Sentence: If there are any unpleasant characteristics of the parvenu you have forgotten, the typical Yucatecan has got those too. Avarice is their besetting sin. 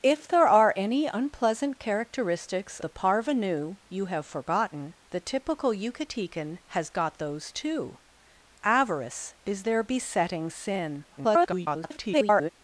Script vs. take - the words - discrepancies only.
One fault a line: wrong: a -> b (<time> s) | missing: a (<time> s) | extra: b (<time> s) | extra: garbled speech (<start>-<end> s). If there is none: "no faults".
missing: of (2.8 s)
extra: garbled speech (11.1-12.5 s)